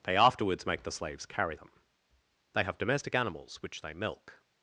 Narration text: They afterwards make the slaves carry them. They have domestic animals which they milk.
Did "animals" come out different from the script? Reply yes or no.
no